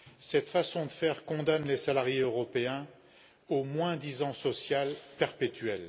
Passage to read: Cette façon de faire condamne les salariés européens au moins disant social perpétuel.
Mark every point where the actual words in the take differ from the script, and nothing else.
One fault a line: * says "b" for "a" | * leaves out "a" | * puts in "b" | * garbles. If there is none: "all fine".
all fine